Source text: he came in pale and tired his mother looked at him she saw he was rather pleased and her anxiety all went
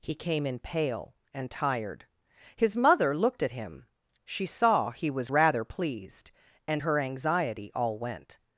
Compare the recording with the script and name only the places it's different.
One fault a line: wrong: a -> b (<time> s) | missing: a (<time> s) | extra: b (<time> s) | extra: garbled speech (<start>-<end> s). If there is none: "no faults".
no faults